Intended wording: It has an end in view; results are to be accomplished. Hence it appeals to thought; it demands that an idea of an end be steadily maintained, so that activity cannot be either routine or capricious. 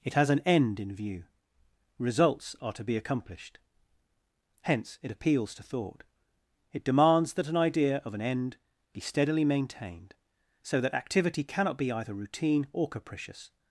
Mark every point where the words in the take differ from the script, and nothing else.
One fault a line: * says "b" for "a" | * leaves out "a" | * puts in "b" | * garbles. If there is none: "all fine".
all fine